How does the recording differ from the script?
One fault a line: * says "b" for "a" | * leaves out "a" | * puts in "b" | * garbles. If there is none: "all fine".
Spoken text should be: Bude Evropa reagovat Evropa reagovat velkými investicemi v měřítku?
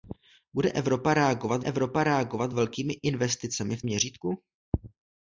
all fine